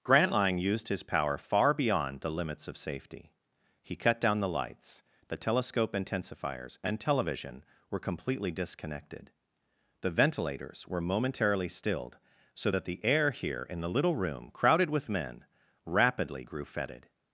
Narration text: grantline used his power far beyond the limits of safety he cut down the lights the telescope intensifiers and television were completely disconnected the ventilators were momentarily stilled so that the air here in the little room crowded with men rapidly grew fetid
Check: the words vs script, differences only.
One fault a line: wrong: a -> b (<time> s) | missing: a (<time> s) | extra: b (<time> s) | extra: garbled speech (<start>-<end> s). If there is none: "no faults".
no faults